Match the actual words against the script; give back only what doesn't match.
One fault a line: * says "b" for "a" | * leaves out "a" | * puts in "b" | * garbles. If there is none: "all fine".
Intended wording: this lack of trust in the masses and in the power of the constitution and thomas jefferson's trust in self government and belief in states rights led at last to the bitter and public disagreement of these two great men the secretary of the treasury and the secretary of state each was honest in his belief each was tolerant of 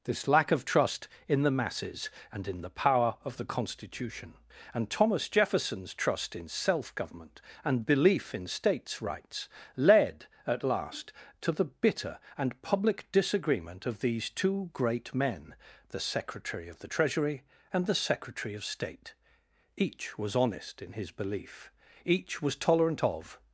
all fine